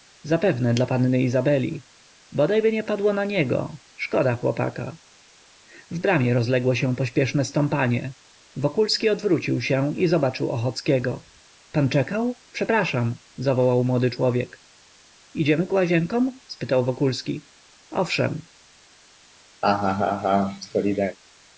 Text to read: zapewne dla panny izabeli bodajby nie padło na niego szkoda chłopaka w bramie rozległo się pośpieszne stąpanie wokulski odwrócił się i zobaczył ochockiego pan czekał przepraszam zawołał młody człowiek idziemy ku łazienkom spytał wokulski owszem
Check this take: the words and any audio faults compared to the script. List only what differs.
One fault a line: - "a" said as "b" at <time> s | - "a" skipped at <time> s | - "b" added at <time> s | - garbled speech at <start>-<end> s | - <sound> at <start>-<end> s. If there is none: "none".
- laugh at 19.6-21.2 s